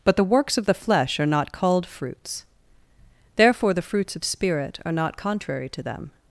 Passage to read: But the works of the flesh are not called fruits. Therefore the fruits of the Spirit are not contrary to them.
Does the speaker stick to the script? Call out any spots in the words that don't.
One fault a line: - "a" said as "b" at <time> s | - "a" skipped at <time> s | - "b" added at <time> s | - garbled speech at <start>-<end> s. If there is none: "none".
- "the" skipped at 4.2 s